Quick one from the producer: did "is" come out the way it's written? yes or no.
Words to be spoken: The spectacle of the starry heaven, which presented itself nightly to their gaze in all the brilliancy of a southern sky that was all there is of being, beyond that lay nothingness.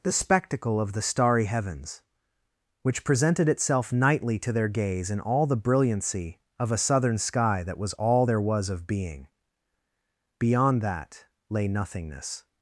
no